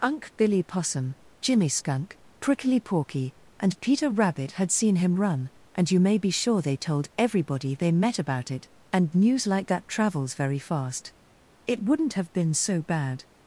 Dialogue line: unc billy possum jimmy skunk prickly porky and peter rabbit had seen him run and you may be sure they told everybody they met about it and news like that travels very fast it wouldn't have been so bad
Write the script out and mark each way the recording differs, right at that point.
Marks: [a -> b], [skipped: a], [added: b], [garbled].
unc billy possum jimmy skunk prickly porky and peter rabbit had seen him run and you may be sure they told everybody they met about it and news like that travels very fast it wouldn't have been so bad